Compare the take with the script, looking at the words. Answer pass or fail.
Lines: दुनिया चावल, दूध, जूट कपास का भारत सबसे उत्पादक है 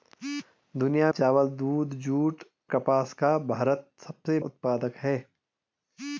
pass